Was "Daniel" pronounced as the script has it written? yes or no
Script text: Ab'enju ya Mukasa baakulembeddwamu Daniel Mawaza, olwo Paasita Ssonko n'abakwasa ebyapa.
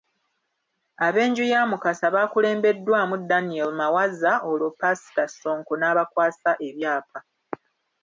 yes